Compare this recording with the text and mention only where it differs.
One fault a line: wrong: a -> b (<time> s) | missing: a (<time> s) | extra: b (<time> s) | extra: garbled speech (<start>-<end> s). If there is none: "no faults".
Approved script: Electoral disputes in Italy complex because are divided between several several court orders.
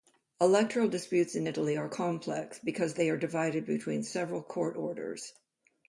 extra: are (1.8 s)
extra: they (2.9 s)
missing: several (4.4 s)